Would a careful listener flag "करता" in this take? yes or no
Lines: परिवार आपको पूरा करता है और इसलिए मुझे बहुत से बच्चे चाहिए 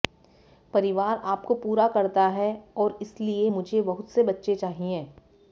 no